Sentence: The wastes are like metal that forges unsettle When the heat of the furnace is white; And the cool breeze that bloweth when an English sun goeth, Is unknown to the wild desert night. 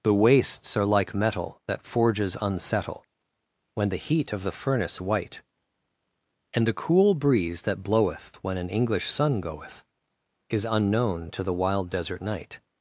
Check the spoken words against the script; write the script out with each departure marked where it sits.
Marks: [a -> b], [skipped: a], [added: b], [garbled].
The wastes are like metal that forges unsettle When the heat of the furnace [skipped: is] white; And the cool breeze that bloweth when an English sun goeth, Is unknown to the wild desert night.